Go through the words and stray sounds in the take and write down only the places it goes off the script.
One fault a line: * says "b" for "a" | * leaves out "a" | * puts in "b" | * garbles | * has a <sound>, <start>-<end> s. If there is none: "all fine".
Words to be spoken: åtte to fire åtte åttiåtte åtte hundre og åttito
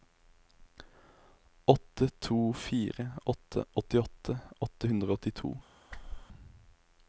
* has a whoosh, 5.9-6.3 s